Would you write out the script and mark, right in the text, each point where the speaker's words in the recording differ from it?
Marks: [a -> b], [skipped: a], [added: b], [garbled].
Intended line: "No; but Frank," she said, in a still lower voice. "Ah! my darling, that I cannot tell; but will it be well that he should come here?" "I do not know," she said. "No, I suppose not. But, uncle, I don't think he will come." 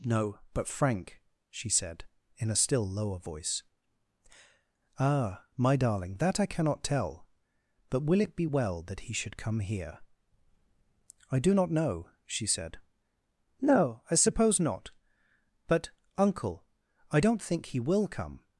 "No; but Frank," she said, in a still lower voice. "Ah! my darling, that I cannot tell; but will it be well that he should come here?" "I do not know," she said. "No, I suppose not. But, uncle, I don't think he will come."